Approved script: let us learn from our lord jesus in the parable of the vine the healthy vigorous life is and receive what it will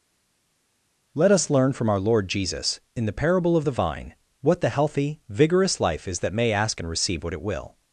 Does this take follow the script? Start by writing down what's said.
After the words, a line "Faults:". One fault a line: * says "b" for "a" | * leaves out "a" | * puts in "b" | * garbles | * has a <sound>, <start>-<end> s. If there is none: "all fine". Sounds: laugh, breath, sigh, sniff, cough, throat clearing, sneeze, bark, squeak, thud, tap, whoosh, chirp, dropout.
let us learn from our lord jesus in the parable of the vine what the healthy vigorous life is that may ask and receive what it will
Faults:
* puts in "what"
* puts in "that may ask"